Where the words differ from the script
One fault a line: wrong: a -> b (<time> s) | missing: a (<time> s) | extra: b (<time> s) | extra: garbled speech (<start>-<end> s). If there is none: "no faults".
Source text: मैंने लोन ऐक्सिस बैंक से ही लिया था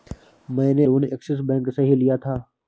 no faults